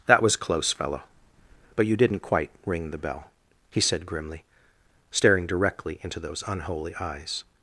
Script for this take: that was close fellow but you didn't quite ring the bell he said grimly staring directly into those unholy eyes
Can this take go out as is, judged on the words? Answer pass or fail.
pass